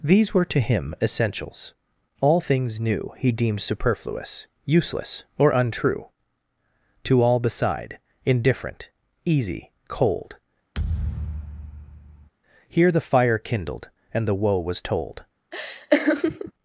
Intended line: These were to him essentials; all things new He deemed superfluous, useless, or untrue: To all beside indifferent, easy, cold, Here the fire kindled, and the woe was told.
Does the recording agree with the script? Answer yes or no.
yes